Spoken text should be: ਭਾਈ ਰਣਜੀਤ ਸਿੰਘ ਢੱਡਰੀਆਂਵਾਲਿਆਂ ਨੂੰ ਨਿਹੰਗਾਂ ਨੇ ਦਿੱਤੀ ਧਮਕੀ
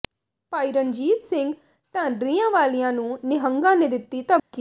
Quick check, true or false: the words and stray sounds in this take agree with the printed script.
false